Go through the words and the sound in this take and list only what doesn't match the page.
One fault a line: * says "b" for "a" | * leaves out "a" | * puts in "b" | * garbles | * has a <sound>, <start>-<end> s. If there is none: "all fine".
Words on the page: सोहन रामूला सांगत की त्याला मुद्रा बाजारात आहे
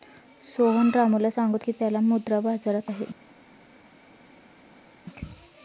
all fine